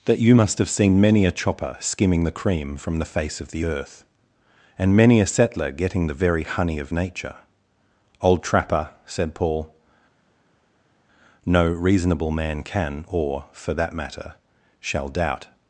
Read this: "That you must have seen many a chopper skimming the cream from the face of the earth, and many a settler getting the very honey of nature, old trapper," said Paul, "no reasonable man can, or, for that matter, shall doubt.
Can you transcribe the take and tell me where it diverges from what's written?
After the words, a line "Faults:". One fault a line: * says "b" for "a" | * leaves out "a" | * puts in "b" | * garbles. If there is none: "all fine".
"That you must have seen many a chopper skimming the cream from the face of the earth, and many a settler getting the very honey of nature, old trapper," said Paul, "no reasonable man can, or, for that matter, shall doubt.
Faults:
all fine